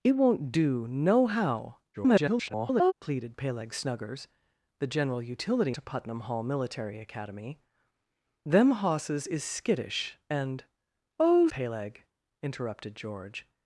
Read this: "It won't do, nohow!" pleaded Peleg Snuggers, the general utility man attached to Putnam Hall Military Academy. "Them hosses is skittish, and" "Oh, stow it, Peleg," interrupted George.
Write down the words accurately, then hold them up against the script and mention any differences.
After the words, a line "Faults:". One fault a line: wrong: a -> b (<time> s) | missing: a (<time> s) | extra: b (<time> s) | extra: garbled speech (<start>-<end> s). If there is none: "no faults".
"It won't do, nohow!" [garbled] pleaded Peleg Snuggers, the general utility to Putnam Hall Military Academy. "Them hosses is skittish, and" "Oh, Peleg," interrupted George.
Faults:
extra: garbled speech (1.9-2.9 s)
missing: man attached (5.7 s)
missing: stow it (11.5 s)